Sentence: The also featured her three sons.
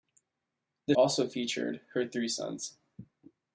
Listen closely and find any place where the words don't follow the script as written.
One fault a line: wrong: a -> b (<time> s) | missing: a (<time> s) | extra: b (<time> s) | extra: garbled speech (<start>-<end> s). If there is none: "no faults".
no faults